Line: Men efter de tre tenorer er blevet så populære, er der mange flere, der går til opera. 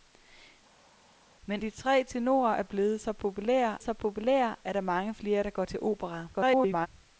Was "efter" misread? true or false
true